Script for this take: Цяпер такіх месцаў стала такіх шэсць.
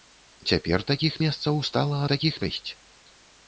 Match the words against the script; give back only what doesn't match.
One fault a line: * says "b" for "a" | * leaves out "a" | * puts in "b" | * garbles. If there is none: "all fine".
all fine